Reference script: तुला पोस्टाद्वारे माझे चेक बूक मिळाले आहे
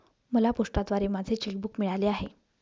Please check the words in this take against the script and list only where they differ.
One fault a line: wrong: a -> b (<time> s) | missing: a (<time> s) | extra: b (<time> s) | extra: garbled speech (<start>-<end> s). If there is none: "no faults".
wrong: तुला -> मला (0.3 s)